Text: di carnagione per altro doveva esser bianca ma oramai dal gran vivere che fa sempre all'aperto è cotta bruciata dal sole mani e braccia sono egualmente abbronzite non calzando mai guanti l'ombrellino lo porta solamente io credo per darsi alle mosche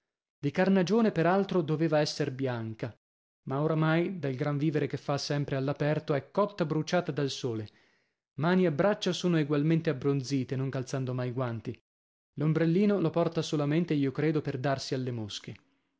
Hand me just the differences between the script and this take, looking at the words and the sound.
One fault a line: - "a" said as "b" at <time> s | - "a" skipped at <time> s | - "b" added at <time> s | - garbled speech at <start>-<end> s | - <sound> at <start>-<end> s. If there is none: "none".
none